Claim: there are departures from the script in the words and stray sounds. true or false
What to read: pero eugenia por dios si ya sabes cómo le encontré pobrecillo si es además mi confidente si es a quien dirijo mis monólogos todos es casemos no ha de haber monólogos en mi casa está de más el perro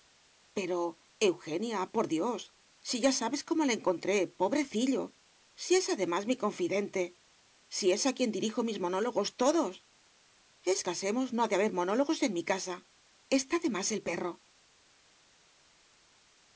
false